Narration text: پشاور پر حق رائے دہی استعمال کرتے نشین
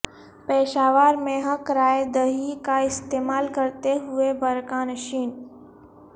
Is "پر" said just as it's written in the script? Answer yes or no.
no